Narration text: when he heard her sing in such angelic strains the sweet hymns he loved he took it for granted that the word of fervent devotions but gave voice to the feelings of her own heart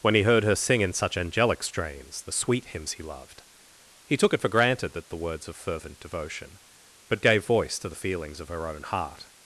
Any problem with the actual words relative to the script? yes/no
yes